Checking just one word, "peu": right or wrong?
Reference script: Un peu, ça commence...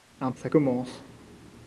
wrong